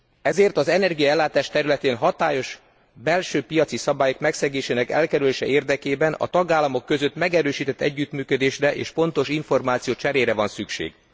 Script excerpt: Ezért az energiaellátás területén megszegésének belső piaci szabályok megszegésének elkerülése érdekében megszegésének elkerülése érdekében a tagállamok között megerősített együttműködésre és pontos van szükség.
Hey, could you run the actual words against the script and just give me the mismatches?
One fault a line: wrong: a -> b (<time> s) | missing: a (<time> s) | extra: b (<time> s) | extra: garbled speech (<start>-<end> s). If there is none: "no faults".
wrong: megszegésének -> hatályos (1.9 s)
missing: megszegésének elkerülése érdekében (6.1 s)
extra: információcserére (9.3 s)